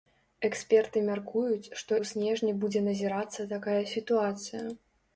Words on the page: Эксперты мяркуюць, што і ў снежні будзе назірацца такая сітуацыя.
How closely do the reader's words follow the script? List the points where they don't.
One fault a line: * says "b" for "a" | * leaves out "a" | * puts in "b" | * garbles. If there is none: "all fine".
* leaves out "і"